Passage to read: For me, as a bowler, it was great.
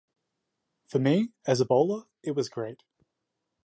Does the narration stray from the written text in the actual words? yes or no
no